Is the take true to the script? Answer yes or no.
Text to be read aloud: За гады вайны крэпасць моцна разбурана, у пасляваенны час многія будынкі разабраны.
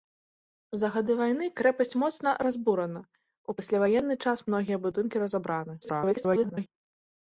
no